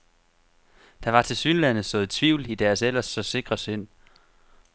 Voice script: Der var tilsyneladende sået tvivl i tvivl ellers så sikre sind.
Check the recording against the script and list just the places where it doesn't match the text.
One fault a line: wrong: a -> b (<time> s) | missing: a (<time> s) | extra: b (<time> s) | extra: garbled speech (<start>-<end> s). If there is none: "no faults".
wrong: tvivl -> deres (2.5 s)